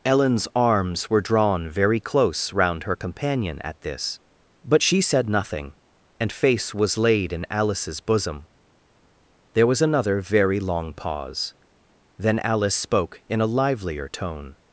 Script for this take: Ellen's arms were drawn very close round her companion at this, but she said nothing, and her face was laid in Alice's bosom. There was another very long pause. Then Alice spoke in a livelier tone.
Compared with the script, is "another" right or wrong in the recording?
right